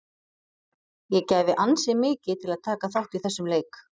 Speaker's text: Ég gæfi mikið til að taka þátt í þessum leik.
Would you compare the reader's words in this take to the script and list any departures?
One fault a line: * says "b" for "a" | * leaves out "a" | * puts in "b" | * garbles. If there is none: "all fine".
* puts in "ansi"